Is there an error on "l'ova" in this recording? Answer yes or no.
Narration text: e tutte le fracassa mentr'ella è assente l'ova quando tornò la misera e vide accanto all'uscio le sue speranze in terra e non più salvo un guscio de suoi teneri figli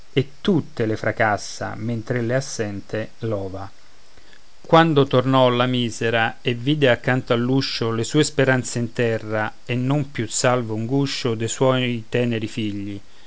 no